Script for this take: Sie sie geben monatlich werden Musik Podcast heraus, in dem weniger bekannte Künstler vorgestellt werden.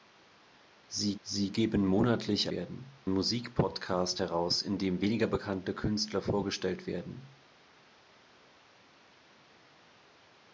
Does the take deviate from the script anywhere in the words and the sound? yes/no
no